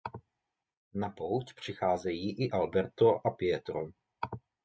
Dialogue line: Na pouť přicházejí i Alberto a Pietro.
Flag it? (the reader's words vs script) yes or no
no